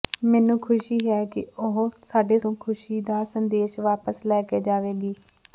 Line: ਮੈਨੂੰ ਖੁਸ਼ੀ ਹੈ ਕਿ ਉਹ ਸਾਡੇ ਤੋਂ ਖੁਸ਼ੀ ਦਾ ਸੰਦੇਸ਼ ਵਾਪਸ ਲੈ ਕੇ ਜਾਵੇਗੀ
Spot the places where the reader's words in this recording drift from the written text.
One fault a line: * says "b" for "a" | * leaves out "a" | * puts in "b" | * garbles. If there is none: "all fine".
all fine